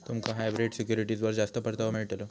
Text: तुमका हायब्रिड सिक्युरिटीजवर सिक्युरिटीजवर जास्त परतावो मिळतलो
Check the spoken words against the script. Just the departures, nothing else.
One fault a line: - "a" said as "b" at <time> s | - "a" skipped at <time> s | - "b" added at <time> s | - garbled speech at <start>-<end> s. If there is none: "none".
- "सिक्युरिटीजवर" skipped at 1.3 s